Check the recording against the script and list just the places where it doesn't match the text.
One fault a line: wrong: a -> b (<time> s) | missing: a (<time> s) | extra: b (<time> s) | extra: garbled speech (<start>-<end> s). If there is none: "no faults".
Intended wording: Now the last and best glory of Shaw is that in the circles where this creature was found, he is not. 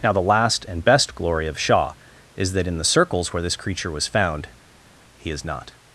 no faults